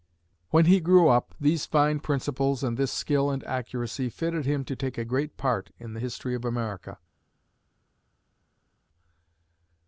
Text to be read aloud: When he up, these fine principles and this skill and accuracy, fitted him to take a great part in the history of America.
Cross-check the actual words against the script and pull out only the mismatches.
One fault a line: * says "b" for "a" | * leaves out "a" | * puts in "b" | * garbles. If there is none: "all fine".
* puts in "grew"